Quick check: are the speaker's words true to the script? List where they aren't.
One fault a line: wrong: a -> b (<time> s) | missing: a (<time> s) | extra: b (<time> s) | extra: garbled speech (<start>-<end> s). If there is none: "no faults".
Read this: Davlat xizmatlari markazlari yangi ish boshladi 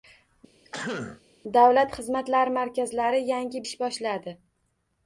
no faults